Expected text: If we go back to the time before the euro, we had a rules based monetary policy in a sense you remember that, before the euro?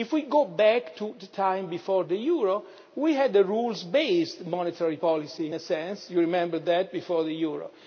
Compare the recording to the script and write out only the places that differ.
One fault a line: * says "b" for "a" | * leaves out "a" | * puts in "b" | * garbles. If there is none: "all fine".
all fine